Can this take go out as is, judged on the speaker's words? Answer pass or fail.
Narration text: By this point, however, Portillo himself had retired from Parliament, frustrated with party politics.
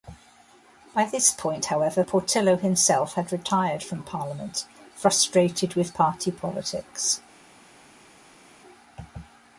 pass